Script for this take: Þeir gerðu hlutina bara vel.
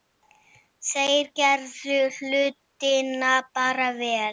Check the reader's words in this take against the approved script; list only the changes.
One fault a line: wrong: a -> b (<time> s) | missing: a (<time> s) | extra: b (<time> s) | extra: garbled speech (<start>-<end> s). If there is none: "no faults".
no faults